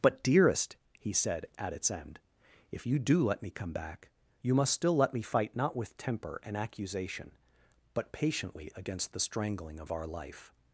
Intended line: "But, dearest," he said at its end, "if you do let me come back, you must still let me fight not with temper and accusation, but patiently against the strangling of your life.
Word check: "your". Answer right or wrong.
wrong